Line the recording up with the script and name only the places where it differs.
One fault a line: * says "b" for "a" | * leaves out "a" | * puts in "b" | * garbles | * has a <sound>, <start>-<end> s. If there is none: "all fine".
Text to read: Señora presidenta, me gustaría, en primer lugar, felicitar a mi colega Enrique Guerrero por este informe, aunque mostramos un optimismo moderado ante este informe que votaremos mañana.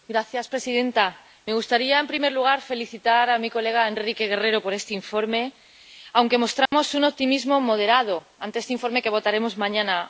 * has a dropout, 6.7-6.7 s